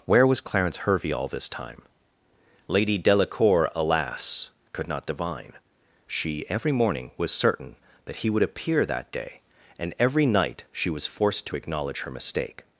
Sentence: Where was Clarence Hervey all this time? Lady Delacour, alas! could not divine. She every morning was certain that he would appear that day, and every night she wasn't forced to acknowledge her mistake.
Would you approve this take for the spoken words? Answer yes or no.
no